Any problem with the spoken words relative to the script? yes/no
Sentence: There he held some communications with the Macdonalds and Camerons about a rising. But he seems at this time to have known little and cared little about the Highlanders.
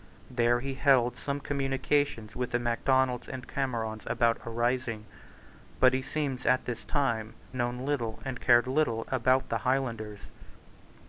yes